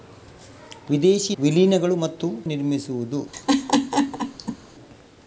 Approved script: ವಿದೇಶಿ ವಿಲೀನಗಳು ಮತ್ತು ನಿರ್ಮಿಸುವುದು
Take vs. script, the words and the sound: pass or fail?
fail